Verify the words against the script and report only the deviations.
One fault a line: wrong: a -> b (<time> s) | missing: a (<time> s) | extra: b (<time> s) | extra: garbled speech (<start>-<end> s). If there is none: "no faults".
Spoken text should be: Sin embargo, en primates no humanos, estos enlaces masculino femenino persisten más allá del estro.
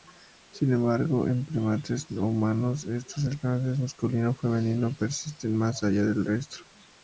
no faults